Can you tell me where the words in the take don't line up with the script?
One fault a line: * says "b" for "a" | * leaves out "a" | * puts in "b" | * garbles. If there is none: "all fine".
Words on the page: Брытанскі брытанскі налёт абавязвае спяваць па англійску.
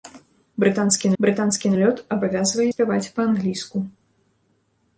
all fine